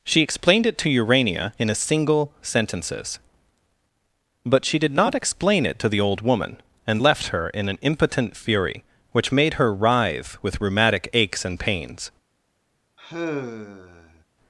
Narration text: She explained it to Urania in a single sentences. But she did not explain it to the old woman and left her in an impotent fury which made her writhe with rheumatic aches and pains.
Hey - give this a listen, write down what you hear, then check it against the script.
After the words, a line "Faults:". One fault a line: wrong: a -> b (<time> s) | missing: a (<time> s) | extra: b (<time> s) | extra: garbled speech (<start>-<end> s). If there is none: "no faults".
She explained it to Urania in a single sentences. But she did not explain it to the old woman and left her in an impotent fury which made her writhe with rheumatic aches and pains.
Faults:
no faults